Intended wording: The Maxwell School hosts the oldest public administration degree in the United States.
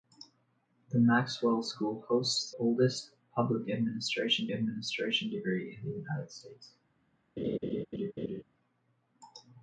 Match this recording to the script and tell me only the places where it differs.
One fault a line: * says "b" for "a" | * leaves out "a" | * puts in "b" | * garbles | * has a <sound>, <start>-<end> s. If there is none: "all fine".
* leaves out "the"
* puts in "administration"
* has a laugh, 7.4-8.4 s